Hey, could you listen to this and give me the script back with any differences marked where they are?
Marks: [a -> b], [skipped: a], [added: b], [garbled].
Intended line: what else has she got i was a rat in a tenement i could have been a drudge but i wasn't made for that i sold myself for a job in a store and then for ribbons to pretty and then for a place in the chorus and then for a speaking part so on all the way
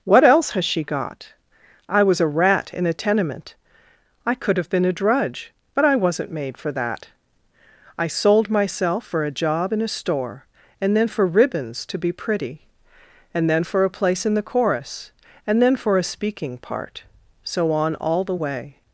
what else has she got i was a rat in a tenement i could have been a drudge but i wasn't made for that i sold myself for a job in a store and then for ribbons to [added: be] pretty and then for a place in the chorus and then for a speaking part so on all the way